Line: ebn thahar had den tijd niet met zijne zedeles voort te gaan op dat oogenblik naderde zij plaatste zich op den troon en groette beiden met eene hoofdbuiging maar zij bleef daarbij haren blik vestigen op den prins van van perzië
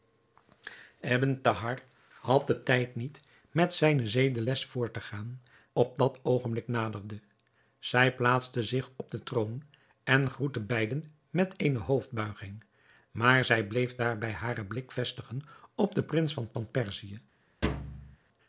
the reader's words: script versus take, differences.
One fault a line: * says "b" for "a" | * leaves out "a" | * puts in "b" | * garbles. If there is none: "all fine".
all fine